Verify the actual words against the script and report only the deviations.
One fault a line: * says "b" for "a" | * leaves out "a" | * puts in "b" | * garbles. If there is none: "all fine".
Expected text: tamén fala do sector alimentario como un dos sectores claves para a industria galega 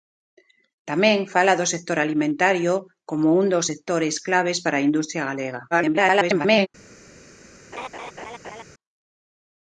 * garbles